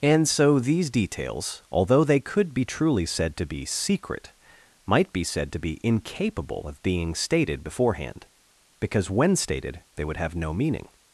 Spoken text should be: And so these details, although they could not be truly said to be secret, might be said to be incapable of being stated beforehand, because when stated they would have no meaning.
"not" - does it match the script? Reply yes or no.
no